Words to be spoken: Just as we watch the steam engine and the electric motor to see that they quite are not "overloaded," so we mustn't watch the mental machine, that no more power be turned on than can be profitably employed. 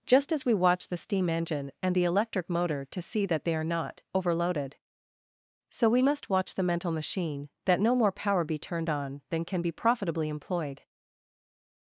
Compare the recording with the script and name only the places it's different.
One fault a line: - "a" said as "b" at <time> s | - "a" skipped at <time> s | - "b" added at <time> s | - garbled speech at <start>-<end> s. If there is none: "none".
- "quite" skipped at 3.5 s
- "mustn't" said as "must" at 6.0 s